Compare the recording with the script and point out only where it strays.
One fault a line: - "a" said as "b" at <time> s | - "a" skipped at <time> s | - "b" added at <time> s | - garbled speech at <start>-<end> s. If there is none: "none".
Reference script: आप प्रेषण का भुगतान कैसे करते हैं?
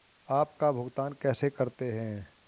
- "प्रेषण" skipped at 0.5 s